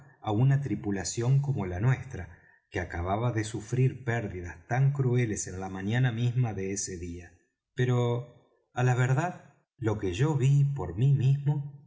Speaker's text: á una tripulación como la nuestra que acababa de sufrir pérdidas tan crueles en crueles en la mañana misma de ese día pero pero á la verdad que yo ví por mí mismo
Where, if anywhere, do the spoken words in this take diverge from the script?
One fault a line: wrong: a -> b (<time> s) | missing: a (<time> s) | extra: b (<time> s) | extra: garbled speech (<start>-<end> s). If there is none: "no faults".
missing: crueles en (5.6 s)
missing: pero (8.7 s)
extra: lo (9.8 s)